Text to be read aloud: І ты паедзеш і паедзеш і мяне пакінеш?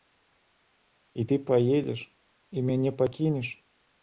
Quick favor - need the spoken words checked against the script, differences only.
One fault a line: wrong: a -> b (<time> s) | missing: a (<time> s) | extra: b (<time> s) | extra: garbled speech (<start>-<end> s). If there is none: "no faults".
missing: паедзеш і (2.7 s)